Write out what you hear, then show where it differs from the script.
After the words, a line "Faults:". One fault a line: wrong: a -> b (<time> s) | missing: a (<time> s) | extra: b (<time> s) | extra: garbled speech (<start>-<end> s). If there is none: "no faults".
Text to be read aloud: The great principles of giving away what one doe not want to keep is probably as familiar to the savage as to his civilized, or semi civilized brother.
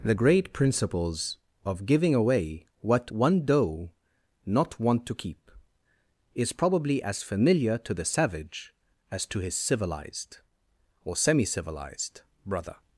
The great principles of giving away what one doe not want to keep is probably as familiar to the savage as to his civilized, or semi civilized brother.
Faults:
no faults